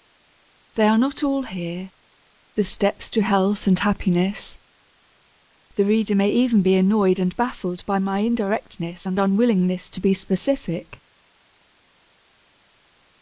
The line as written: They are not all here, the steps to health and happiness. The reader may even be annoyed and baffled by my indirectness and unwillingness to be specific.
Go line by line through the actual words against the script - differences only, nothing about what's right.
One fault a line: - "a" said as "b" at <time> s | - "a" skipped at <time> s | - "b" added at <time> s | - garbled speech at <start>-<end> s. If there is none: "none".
none